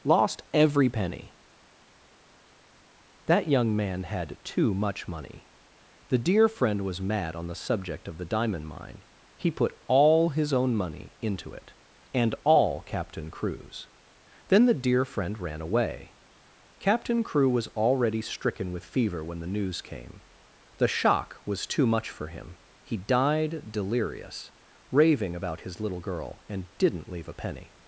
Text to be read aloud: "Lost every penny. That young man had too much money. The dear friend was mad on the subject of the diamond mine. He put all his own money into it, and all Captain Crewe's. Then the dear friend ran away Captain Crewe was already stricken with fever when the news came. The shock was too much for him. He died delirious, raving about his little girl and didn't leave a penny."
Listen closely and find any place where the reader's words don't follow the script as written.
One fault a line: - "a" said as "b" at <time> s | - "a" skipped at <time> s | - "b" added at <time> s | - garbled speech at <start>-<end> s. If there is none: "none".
none